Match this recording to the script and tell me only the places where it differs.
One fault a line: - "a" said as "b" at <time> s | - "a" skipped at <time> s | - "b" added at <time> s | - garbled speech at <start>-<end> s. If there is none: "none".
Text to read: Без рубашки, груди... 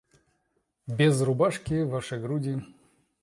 - "ваши" added at 1.8 s